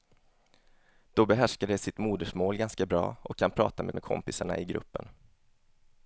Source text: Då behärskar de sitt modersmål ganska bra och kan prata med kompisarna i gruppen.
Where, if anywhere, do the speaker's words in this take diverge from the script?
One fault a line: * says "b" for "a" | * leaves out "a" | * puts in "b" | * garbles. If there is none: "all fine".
* puts in "med"